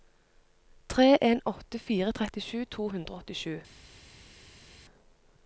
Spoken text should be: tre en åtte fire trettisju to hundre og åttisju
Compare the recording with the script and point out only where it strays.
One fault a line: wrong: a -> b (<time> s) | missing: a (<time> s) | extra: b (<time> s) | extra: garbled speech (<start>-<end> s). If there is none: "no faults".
no faults